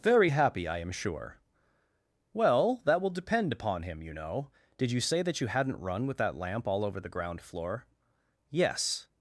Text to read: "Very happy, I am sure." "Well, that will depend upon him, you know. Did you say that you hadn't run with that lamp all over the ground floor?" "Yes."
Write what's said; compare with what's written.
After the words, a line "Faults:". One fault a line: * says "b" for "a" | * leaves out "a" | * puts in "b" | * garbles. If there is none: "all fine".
"Very happy, I am sure." "Well, that will depend upon him, you know. Did you say that you hadn't run with that lamp all over the ground floor?" "Yes."
Faults:
all fine